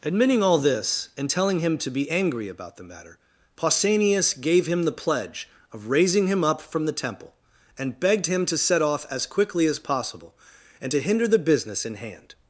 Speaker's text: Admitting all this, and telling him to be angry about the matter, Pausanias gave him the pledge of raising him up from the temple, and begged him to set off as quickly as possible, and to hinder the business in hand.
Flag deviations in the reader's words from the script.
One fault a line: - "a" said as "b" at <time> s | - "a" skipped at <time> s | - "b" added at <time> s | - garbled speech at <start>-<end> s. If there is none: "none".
none